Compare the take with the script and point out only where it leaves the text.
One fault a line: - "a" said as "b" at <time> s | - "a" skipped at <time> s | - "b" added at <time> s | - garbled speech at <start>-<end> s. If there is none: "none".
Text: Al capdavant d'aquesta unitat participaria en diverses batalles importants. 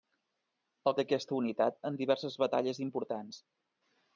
- "capdavant" skipped at 0.9 s
- "participaria" skipped at 1.8 s